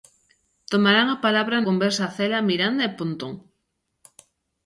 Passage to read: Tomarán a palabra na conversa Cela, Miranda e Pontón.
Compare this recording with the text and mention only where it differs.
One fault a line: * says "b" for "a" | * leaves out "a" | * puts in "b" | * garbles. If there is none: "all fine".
* leaves out "na"